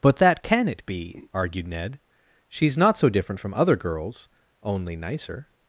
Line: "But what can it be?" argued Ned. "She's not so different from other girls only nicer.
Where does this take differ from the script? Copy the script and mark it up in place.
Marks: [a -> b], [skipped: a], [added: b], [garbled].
"But [what -> that] can it be?" argued Ned. "She's not so different from other girls only nicer.